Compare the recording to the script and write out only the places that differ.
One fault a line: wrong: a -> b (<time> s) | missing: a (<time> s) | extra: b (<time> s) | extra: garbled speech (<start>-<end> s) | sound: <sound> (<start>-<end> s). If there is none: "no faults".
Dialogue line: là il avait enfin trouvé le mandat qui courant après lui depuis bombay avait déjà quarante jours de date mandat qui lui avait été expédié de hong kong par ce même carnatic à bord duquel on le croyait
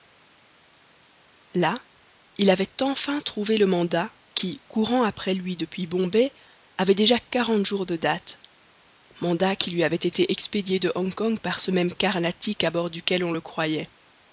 no faults